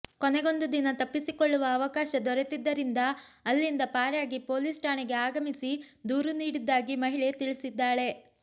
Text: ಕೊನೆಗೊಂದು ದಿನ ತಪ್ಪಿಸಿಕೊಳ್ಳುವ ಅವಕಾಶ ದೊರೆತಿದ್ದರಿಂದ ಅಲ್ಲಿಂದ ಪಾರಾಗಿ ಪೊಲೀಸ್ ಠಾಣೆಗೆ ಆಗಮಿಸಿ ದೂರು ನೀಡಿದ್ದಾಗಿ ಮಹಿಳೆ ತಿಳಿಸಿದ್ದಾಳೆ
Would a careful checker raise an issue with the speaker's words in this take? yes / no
no